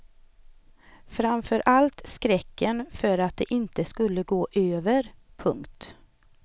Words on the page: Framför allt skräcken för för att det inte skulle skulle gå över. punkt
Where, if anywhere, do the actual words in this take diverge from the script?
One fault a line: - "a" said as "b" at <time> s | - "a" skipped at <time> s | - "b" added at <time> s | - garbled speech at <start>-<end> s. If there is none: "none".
- "för" skipped at 3.2 s
- "skulle" skipped at 4.2 s